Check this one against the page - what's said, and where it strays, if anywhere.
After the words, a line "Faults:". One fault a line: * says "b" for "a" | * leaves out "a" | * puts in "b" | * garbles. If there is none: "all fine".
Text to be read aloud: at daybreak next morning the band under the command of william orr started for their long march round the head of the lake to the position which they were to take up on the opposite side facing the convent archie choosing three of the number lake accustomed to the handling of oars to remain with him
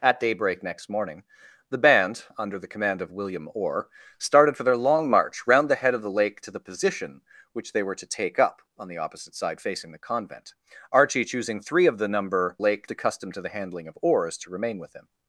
at daybreak next morning the band under the command of william orr started for their long march round the head of the lake to the position which they were to take up on the opposite side facing the convent archie choosing three of the number lake accustomed to the handling of oars to remain with him
Faults:
all fine